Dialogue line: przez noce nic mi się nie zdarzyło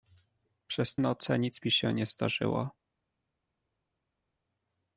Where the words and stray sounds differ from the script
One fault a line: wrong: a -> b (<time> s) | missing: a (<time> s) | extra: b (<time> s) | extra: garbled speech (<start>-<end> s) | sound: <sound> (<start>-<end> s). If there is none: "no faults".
no faults